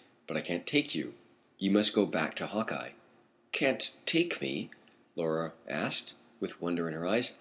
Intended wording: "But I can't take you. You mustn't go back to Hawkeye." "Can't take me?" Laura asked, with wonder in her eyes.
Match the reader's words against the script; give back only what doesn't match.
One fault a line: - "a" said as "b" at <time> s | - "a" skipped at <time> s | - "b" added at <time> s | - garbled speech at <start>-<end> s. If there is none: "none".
- "mustn't" said as "must" at 1.7 s